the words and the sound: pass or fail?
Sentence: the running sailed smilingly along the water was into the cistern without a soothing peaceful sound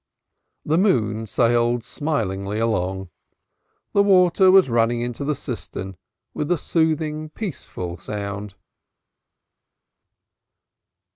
fail